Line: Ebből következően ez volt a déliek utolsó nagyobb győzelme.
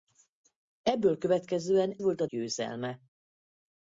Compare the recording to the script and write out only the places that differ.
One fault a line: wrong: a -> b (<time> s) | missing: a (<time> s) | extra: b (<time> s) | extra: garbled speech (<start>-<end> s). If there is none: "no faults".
missing: ez (2.0 s)
missing: déliek utolsó nagyobb (2.3 s)